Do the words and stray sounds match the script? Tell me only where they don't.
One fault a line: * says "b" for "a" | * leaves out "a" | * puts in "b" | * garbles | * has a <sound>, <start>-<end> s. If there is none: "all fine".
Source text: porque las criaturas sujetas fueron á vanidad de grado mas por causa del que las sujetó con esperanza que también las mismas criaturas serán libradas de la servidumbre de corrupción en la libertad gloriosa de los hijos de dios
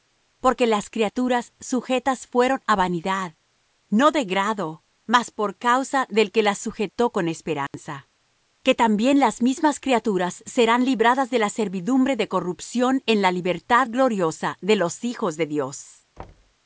* puts in "no"
* has a dropout, 7.7-7.7 s
* has a thud, 16.2-16.5 s